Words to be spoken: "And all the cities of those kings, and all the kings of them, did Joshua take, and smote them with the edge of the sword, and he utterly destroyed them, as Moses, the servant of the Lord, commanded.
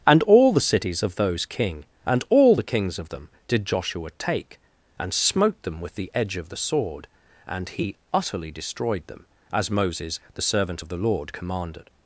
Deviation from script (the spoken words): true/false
true